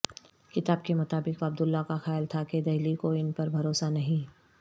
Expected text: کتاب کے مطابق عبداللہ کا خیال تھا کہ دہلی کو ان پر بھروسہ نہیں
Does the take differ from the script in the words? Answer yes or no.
no